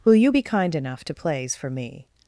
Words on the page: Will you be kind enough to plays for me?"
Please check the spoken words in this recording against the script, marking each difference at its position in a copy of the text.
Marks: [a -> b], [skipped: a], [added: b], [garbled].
Will you be kind enough to plays for me?"